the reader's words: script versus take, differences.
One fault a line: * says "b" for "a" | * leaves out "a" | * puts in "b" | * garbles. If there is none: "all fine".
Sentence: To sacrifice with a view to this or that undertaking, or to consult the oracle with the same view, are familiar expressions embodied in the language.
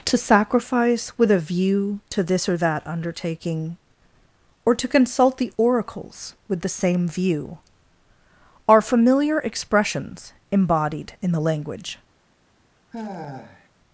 * says "oracles" for "oracle"